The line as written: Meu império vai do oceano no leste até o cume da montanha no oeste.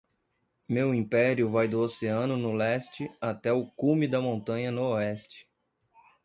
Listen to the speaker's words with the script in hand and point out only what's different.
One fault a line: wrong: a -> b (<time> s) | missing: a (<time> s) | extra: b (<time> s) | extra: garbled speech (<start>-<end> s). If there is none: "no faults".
no faults